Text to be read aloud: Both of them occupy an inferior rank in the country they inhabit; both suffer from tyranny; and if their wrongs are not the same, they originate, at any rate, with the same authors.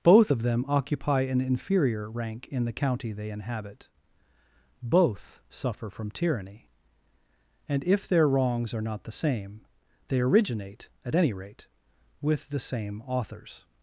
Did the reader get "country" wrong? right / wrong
wrong